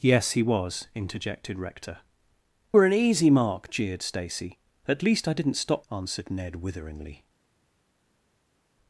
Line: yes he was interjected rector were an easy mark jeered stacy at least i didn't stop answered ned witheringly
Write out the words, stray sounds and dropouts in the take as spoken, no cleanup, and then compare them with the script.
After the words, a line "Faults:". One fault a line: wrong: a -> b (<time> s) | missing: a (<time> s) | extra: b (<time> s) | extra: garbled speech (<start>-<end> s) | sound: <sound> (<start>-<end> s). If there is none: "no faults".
yes he was interjected rector were an easy mark jeered stacy at least i didn't stop answered ned witheringly
Faults:
no faults